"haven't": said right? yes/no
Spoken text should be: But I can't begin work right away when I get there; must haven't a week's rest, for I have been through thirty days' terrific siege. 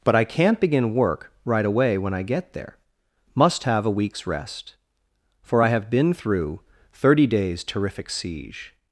no